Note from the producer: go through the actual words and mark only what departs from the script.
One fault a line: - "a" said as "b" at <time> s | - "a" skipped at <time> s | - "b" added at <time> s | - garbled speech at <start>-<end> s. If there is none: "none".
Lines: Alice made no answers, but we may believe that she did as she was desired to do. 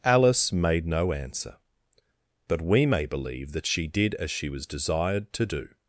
- "answers" said as "answer" at 1.1 s